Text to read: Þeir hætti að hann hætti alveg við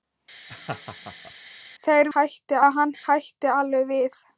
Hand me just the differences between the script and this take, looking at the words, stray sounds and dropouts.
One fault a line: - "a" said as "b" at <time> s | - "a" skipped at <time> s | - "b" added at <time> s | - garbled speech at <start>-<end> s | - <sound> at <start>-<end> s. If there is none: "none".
- laugh at 0.5-1.3 s